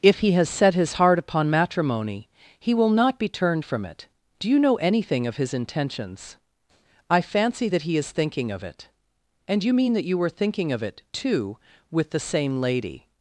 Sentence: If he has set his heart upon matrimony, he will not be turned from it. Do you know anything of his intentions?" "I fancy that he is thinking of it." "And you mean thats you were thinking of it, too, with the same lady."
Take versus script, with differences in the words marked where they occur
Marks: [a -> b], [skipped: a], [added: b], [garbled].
If he has set his heart upon matrimony, he will not be turned from it. Do you know anything of his intentions?" "I fancy that he is thinking of it." "And you mean [thats -> that] you were thinking of it, too, with the same lady."